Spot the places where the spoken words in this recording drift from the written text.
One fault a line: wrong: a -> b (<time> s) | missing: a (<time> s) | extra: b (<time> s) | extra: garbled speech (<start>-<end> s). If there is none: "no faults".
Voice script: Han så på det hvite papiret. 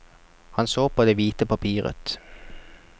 no faults